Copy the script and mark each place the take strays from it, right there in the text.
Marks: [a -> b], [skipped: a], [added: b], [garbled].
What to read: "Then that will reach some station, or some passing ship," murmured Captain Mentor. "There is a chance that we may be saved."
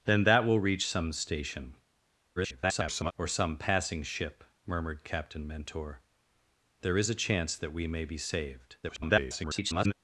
"Then that will reach some station, [garbled] or some passing ship," murmured Captain Mentor. "There is a chance that we may be saved." [garbled]